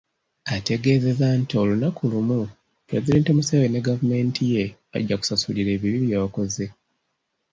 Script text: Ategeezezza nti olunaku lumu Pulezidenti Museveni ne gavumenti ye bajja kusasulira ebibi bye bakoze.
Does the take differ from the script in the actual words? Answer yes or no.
no